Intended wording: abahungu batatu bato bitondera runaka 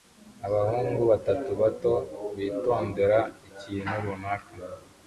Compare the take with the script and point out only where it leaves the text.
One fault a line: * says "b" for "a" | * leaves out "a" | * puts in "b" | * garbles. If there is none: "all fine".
* puts in "ikintu"